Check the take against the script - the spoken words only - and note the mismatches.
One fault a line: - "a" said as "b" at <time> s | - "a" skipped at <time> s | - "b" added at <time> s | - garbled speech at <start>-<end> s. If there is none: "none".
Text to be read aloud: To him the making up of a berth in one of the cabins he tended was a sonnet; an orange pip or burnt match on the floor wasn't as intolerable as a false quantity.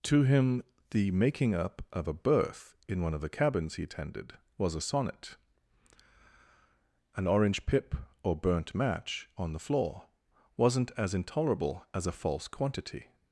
none